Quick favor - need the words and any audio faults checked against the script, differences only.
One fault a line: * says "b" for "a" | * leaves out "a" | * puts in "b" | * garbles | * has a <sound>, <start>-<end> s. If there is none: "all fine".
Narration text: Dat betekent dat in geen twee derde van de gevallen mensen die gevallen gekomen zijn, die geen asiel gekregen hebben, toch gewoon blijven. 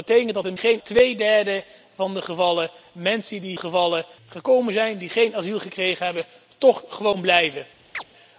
* has a chirp, 7.9-8.0 s